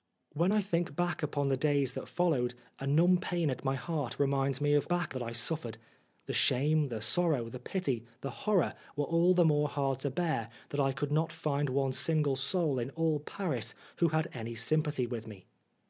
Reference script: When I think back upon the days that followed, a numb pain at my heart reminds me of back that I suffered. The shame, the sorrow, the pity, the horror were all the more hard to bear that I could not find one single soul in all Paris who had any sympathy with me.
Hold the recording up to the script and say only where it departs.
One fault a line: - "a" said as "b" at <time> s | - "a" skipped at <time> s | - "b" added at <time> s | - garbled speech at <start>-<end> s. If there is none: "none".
none